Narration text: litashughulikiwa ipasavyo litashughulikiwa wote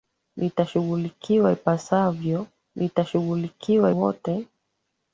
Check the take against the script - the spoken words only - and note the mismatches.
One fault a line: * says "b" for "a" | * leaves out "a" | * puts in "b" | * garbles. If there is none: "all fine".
all fine